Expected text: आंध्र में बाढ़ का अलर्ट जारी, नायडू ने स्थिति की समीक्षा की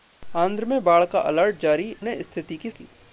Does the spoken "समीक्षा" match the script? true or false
false